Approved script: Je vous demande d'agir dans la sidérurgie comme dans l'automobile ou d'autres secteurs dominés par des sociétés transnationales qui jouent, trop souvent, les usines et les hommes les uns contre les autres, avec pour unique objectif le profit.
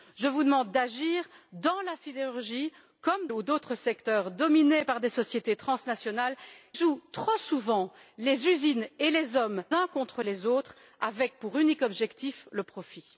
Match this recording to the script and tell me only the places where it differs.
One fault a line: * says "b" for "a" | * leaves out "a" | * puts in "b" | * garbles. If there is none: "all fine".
* leaves out "dans l'automobile"
* leaves out "qui"
* leaves out "les"